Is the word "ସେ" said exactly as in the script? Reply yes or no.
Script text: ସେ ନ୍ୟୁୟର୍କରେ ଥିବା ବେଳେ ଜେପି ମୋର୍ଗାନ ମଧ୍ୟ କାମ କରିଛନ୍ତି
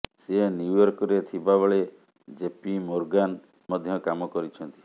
yes